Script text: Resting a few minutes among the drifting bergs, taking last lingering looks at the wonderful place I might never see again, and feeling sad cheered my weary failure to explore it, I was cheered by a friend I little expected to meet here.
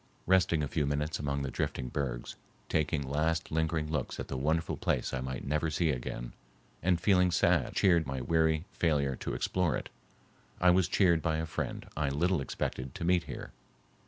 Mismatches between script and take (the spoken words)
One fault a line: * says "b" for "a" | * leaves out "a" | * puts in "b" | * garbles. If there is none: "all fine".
all fine